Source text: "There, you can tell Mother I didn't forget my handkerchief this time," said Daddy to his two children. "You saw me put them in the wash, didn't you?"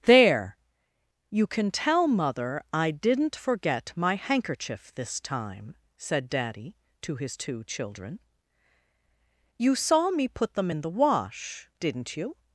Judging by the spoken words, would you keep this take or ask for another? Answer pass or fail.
pass